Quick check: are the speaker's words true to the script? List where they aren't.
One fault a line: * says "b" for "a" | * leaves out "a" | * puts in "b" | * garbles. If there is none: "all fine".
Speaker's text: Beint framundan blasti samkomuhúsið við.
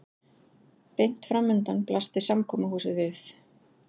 all fine